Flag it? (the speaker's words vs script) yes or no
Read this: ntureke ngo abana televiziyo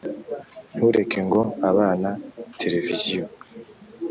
no